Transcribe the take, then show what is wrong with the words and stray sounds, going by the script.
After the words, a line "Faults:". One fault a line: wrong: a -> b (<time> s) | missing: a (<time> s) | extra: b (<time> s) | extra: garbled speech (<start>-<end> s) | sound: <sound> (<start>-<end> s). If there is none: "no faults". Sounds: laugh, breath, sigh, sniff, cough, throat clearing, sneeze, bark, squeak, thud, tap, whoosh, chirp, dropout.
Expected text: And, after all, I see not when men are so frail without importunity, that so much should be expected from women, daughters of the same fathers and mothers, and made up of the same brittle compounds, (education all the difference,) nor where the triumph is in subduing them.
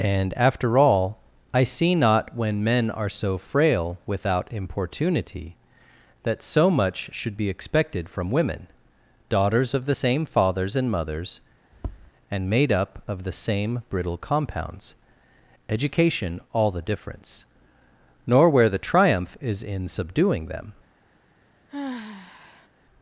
And, after all, I see not when men are so frail without importunity, that so much should be expected from women, daughters of the same fathers and mothers, and made up of the same brittle compounds, (education all the difference,) nor where the triumph is in subduing them.
Faults:
sound: tap (11.7-12.1 s)
sound: sigh (21.7-22.7 s)